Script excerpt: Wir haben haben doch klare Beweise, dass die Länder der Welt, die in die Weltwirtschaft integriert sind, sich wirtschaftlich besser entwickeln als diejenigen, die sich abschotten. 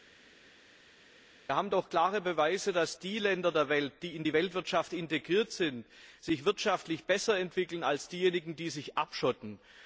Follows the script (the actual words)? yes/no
no